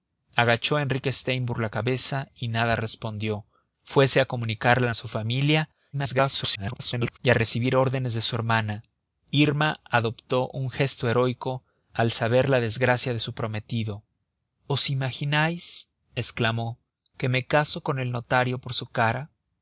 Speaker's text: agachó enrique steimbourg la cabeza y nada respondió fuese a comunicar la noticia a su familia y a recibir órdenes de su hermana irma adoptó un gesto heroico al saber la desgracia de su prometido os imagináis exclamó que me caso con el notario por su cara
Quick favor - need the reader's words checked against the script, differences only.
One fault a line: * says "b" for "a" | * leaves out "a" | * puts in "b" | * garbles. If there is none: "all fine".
* leaves out "noticia"
* garbles